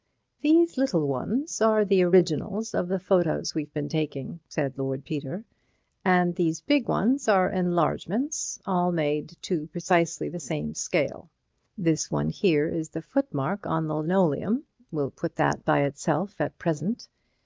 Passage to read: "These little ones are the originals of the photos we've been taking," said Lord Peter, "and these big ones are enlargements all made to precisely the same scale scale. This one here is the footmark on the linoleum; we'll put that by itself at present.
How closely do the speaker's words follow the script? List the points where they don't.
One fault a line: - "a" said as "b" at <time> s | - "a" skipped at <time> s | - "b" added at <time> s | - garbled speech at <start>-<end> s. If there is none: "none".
- "scale" skipped at 11.3 s